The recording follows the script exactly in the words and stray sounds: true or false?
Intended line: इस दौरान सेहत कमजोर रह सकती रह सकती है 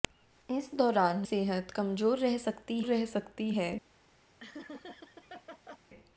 false